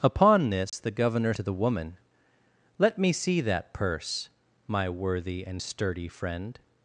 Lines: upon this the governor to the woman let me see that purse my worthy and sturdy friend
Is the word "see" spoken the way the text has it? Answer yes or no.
yes